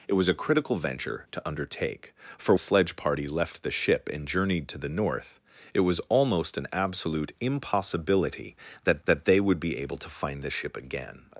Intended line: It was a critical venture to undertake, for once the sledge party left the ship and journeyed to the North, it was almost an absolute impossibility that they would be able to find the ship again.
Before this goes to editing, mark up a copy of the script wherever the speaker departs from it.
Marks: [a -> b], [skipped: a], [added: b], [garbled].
It was a critical venture to undertake, for [skipped: once the] sledge party left the ship and journeyed to the North, it was almost an absolute impossibility that [added: that] they would be able to find the ship again.